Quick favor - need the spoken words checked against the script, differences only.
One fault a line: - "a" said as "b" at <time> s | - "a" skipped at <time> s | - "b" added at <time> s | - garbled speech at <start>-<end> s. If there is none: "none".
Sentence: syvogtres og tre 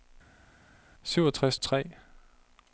none